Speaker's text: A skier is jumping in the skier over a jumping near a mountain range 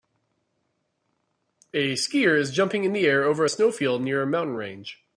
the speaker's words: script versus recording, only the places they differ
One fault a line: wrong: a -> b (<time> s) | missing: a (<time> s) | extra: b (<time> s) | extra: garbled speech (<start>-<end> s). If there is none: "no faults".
wrong: skier -> air (3.0 s)
wrong: jumping -> snowfield (3.5 s)